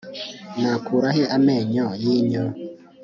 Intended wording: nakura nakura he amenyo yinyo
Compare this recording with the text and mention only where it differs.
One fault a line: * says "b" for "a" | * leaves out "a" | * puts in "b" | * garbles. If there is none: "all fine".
* leaves out "nakura"